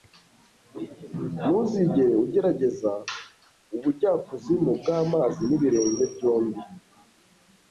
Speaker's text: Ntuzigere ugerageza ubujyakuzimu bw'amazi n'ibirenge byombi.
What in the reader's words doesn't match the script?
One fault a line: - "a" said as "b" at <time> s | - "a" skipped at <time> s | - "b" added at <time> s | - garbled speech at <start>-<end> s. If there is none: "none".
none